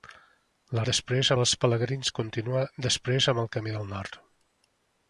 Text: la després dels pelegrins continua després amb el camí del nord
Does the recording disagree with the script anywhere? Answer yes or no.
no